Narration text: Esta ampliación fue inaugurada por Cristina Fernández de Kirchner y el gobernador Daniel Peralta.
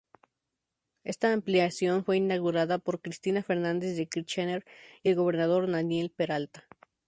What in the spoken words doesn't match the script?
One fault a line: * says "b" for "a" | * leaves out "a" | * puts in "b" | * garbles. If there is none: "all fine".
all fine